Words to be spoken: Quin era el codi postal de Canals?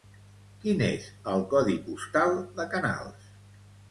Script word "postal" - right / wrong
right